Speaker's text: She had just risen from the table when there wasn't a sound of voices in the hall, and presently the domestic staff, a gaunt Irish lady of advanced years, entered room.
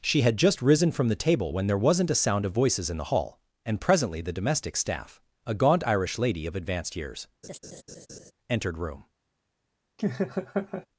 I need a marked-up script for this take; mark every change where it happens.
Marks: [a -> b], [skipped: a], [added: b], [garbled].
She had just risen from the table when there wasn't a sound of voices in the hall, and presently the domestic staff, a gaunt Irish lady of advanced years, entered room.